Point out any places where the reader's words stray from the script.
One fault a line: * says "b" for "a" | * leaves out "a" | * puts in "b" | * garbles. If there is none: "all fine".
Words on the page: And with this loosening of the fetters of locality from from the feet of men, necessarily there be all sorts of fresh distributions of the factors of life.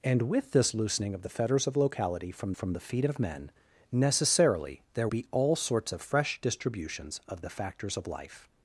all fine